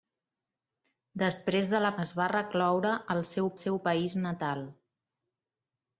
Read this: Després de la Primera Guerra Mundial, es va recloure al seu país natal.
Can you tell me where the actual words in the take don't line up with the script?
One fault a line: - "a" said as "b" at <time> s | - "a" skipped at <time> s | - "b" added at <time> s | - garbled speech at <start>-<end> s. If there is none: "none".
- "Primera Guerra Mundial" skipped at 1.9 s
- "seu" added at 3.6 s